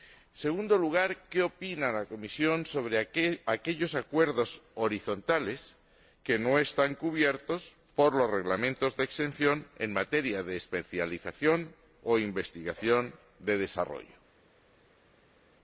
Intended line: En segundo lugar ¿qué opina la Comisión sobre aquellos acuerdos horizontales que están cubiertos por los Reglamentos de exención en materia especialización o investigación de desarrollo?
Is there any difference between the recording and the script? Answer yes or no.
yes